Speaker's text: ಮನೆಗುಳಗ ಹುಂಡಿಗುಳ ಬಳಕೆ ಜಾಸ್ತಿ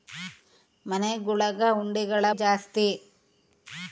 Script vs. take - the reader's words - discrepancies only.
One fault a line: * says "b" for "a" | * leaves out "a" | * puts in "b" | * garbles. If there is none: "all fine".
* leaves out "ಬಳಕೆ"